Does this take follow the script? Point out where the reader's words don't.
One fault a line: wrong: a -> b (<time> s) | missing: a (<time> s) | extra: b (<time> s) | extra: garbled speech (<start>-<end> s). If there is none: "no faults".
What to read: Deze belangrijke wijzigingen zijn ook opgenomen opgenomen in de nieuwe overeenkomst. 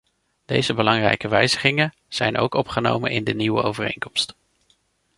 missing: opgenomen (3.1 s)